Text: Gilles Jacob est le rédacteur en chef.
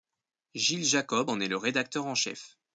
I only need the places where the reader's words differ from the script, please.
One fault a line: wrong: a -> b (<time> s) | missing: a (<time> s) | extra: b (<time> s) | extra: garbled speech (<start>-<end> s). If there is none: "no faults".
extra: en (1.3 s)